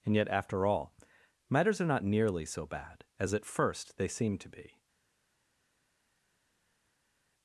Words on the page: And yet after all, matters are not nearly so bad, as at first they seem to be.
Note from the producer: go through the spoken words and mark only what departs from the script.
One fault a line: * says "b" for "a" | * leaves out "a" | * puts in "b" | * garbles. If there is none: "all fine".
all fine